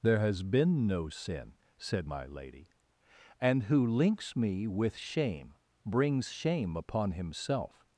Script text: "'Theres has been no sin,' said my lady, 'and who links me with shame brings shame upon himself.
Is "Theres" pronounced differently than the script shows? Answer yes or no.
yes